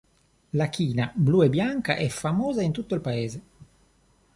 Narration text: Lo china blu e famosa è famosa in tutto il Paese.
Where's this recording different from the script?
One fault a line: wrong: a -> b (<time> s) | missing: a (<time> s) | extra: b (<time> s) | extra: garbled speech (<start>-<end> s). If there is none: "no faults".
wrong: Lo -> La (0.5 s)
wrong: famosa -> bianca (1.5 s)